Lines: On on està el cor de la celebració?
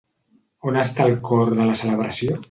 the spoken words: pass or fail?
fail